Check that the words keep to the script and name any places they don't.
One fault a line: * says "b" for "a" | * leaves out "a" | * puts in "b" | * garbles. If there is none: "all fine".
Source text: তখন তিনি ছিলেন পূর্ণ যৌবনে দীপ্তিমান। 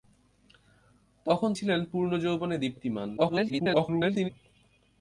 * leaves out "তিনি"
* garbles